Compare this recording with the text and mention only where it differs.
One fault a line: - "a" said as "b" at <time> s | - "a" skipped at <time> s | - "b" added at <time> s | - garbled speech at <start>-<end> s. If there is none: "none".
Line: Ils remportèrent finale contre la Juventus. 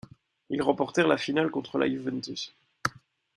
- "la" added at 1.1 s